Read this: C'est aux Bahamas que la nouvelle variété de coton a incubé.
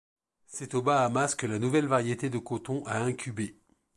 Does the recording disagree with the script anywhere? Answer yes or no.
no